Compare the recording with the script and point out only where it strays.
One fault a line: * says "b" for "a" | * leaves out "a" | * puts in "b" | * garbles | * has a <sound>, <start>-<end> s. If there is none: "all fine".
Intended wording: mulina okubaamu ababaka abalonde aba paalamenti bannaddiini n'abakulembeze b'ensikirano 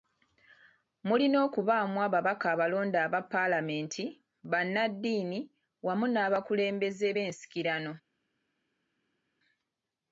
* puts in "wamu"